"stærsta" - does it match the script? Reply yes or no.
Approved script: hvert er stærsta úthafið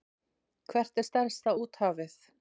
yes